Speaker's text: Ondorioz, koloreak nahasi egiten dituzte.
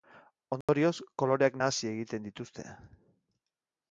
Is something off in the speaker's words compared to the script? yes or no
no